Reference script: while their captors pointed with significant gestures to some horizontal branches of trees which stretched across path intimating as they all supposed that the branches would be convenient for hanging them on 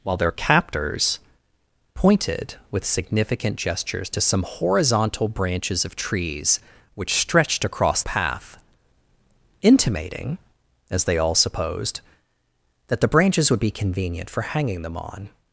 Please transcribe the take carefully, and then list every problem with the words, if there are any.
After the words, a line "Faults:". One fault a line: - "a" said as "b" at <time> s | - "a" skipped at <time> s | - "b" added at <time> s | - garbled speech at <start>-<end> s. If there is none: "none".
while their captors pointed with significant gestures to some horizontal branches of trees which stretched across path intimating as they all supposed that the branches would be convenient for hanging them on
Faults:
none